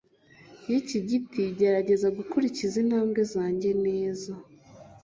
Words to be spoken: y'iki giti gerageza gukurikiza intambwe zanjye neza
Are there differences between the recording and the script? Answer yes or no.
no